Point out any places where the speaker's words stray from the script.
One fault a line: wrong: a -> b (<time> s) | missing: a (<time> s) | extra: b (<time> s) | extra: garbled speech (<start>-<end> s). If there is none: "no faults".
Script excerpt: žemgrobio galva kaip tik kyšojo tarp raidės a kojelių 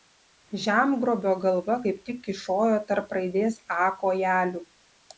no faults